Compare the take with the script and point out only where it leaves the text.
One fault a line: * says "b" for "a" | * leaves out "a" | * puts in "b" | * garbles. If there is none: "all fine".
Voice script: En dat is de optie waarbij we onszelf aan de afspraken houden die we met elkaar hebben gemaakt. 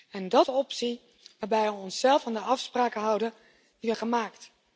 * leaves out "is"
* leaves out "met elkaar hebben"